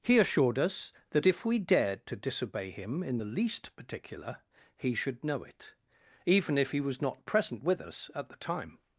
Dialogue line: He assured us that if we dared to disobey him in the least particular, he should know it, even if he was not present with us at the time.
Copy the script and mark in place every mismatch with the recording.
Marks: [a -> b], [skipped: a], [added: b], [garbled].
He assured us that if we dared to disobey him in the least particular, he should know it, even if he was not present with us at the time.